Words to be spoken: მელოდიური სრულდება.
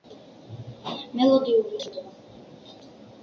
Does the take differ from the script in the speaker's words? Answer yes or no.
no